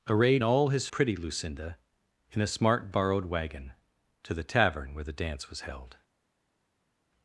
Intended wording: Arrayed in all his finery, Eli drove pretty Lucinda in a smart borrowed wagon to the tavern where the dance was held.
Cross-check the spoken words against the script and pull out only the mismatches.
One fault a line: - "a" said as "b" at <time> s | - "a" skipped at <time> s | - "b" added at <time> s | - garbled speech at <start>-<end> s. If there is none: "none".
- "in" skipped at 0.4 s
- "finery Eli drove" skipped at 0.9 s